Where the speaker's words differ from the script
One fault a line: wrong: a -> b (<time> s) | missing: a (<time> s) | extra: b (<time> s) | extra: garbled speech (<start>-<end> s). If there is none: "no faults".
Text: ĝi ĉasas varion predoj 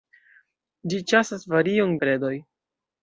no faults